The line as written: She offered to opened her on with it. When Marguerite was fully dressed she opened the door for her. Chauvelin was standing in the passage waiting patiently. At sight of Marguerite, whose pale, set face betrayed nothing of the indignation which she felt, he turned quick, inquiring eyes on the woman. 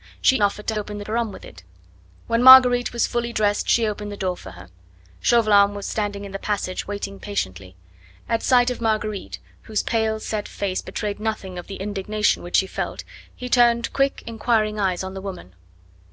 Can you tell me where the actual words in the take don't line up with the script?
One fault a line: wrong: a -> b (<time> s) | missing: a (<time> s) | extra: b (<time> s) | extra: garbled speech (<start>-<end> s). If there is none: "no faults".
no faults